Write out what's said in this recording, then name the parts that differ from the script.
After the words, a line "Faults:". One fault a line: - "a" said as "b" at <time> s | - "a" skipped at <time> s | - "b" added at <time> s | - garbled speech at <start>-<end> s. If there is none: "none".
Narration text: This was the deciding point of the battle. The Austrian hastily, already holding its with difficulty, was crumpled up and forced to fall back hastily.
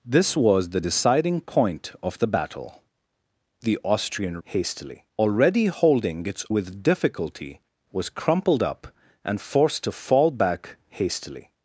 This was the deciding point of the battle. The Austrian hastily, already holding its with difficulty, was crumpled up and forced to fall back hastily.
Faults:
none